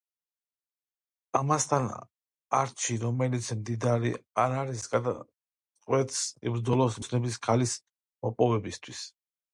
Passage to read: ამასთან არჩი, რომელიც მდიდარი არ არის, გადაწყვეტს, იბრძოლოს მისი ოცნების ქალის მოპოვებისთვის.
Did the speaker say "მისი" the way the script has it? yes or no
no